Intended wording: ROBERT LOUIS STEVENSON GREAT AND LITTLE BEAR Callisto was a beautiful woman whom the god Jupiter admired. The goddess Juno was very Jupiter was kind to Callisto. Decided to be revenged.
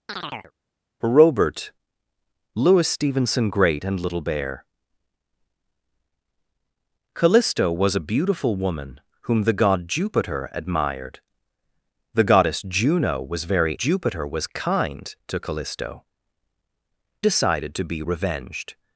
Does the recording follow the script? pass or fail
pass